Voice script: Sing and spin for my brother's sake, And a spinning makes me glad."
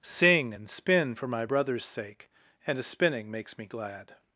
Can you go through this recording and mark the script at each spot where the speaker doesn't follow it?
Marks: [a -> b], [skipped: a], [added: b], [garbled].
Sing and spin for my brother's sake, And a spinning makes me glad."